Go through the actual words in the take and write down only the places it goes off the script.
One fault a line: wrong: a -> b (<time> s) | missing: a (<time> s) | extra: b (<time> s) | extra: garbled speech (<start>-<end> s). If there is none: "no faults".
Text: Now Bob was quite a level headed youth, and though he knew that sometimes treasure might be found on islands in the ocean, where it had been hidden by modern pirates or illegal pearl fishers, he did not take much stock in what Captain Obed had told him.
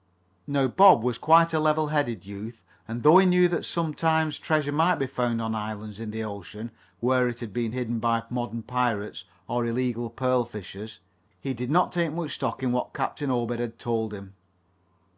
no faults